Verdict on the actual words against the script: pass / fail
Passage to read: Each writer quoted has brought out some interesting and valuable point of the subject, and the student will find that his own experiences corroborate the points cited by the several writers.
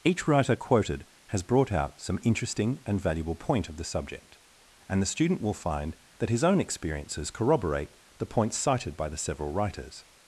pass